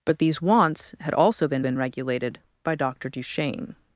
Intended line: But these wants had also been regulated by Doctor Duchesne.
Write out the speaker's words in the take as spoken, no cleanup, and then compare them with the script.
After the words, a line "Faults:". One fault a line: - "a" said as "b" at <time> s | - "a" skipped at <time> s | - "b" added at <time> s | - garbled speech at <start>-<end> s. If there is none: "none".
But these wants had also been been regulated by Doctor Duchesne.
Faults:
- "been" added at 1.6 s